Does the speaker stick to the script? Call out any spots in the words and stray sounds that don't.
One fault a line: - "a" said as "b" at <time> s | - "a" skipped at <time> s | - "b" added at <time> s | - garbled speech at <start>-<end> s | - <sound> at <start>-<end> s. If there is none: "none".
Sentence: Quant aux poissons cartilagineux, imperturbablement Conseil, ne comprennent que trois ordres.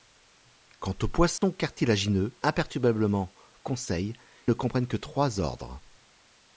- dropout at 1.4-1.4 s